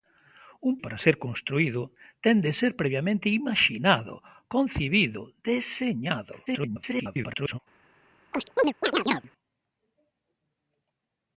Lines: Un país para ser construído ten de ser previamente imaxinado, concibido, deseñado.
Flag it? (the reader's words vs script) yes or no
yes